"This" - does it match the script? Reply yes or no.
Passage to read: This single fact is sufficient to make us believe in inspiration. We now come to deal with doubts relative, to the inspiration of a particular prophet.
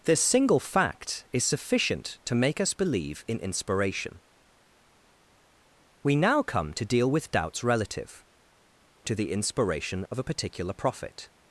yes